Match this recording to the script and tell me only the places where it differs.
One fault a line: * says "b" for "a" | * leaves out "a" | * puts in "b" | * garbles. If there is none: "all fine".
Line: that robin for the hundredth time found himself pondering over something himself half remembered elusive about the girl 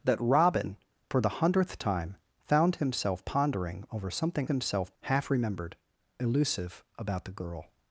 all fine